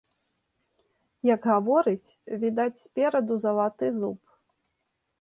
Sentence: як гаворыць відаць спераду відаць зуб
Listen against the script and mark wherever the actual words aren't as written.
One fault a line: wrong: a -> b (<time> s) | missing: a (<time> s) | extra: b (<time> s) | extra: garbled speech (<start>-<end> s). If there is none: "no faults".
wrong: відаць -> залаты (3.5 s)